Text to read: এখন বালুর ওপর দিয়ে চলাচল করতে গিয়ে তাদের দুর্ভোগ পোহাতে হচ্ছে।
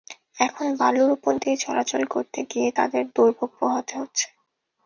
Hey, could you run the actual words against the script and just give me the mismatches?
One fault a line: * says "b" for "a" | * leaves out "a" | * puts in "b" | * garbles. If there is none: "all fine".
all fine